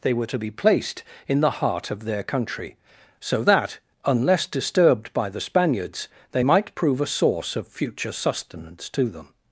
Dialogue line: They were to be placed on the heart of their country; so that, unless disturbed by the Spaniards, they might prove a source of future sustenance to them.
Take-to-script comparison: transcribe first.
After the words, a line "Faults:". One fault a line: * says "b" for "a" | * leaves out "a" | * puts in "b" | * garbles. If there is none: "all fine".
They were to be placed in the heart of their country; so that, unless disturbed by the Spaniards, they might prove a source of future sustenance to them.
Faults:
* says "in" for "on"